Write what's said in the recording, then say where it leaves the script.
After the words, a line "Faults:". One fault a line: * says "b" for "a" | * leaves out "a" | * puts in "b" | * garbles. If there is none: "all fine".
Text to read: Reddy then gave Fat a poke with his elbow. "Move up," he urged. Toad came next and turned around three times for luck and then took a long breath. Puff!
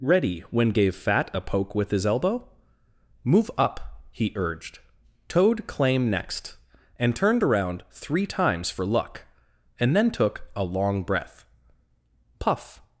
Reddy when gave Fat a poke with his elbow. "Move up," he urged. Toad claim next and turned around three times for luck and then took a long breath. Puff!
Faults:
* says "when" for "then"
* says "claim" for "came"